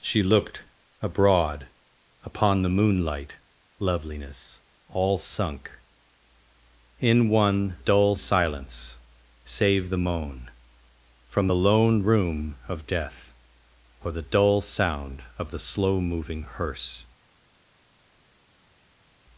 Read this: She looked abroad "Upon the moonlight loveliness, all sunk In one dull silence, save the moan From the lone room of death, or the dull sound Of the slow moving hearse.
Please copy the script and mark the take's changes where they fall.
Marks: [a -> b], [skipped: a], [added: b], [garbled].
She looked abroad "Upon the moonlight loveliness, all sunk In one dull silence, save the moan From the lone room of death, or the dull sound Of the slow moving hearse.